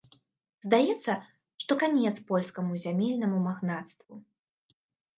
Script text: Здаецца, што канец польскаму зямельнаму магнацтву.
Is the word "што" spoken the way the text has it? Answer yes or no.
yes